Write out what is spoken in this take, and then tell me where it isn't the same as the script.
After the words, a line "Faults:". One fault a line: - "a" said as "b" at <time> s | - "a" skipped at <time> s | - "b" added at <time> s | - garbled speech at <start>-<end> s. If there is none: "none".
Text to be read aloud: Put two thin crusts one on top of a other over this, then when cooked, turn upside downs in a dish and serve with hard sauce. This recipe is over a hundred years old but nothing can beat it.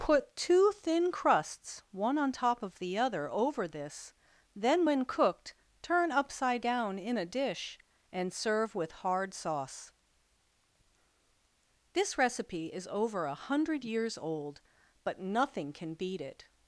Put two thin crusts one on top of the other over this, then when cooked, turn upside down in a dish and serve with hard sauce. This recipe is over a hundred years old but nothing can beat it.
Faults:
- "a" said as "the" at 2.8 s
- "downs" said as "down" at 6.6 s